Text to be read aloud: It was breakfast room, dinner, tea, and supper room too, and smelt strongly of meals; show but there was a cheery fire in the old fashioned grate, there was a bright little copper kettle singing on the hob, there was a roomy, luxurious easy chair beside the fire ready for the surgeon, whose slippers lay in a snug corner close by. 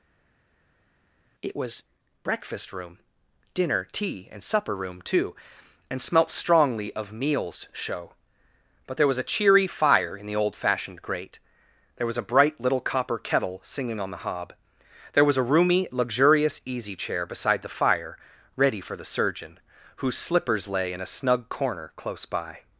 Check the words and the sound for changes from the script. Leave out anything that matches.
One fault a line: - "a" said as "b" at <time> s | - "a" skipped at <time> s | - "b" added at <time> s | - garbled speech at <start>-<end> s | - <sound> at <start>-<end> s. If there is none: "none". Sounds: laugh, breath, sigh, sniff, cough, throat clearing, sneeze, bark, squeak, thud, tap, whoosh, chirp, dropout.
none